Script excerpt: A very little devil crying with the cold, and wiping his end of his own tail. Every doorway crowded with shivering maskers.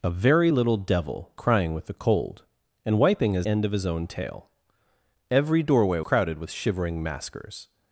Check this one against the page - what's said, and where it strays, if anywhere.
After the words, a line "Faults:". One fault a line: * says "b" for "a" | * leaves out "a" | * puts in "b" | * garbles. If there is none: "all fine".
A very little devil crying with the cold, and wiping his end of his own tail. Every doorway crowded with shivering maskers.
Faults:
all fine